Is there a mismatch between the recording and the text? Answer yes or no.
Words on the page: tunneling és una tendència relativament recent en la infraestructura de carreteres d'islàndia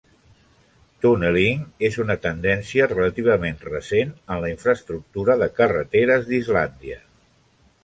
no